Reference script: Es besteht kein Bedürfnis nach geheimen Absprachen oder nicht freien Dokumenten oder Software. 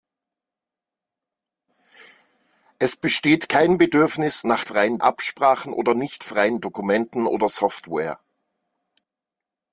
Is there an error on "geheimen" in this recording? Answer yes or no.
yes